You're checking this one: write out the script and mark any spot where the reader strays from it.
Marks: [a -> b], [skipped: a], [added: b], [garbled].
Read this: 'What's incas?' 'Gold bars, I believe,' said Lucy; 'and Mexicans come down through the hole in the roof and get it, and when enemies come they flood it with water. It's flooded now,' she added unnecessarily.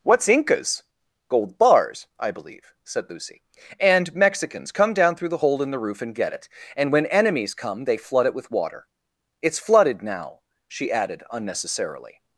'What's incas?' 'Gold bars, I believe,' said Lucy; 'and Mexicans come down through the hole in the roof and get it, and when enemies come they flood it with water. It's flooded now,' she added unnecessarily.